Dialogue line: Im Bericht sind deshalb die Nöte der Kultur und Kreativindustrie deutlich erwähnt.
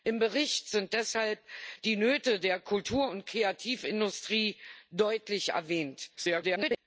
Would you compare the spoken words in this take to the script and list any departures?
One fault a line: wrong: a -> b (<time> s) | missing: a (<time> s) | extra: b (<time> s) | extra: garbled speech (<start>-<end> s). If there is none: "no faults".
extra: garbled speech (6.2-6.8 s)